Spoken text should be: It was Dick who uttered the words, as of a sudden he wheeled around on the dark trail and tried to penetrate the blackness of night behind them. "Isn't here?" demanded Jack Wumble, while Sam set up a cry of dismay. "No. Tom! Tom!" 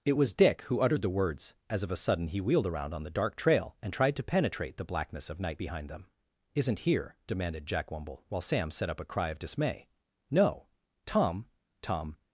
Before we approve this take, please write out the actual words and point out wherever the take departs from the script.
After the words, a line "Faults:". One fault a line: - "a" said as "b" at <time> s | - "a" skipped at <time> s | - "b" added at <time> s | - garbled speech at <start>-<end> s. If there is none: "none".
It was Dick who uttered the words, as of a sudden he wheeled around on the dark trail and tried to penetrate the blackness of night behind them. "Isn't here?" demanded Jack Wumble, while Sam set up a cry of dismay. "No. Tom! Tom!"
Faults:
none